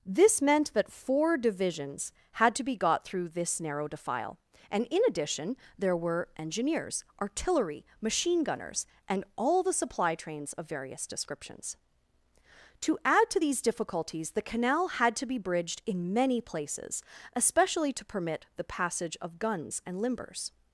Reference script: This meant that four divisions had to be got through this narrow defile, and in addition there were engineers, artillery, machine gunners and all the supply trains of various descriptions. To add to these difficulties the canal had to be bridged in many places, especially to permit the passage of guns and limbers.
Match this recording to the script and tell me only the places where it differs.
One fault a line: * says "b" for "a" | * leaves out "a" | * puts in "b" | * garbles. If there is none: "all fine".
all fine